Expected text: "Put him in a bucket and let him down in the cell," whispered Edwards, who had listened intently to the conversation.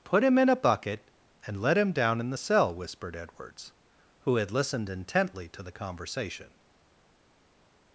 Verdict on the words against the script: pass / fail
pass